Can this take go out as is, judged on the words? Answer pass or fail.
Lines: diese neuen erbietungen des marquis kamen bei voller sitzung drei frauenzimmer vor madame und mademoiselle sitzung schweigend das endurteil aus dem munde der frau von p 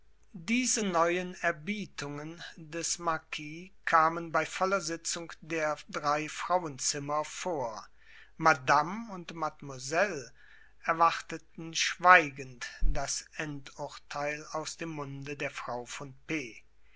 fail